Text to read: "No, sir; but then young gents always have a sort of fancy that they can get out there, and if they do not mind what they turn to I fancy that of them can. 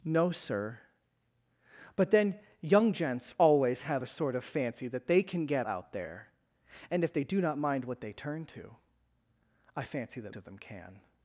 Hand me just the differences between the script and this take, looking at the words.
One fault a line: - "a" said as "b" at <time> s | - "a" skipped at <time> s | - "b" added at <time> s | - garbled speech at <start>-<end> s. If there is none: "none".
none